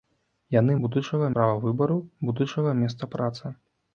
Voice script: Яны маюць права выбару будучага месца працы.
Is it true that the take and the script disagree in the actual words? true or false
true